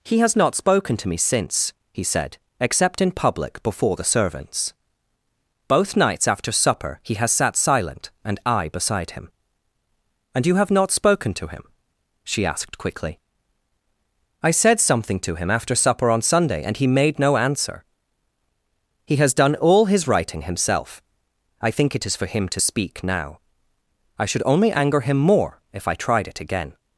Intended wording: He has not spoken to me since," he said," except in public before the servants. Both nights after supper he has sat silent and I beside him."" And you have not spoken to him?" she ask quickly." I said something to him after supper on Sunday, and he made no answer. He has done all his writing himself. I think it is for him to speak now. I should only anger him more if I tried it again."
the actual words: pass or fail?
fail